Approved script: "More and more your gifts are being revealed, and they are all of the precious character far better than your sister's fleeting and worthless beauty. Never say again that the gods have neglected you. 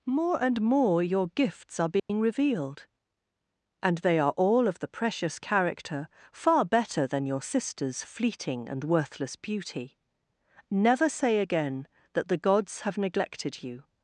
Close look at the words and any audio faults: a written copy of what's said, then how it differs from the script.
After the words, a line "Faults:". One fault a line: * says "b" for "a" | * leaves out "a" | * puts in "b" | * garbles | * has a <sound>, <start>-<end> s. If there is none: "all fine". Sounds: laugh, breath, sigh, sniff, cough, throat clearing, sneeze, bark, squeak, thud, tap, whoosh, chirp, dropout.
"More and more your gifts are being revealed, and they are all of the precious character far better than your sister's fleeting and worthless beauty. Never say again that the gods have neglected you.
Faults:
* has a dropout, 2.0-2.1 s